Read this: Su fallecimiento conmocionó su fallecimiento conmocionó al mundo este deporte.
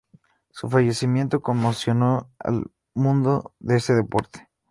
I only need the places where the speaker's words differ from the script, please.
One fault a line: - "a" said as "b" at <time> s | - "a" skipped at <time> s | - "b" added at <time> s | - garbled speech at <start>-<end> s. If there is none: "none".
- "su fallecimiento conmocionó" skipped at 2.3 s
- "de" added at 3.6 s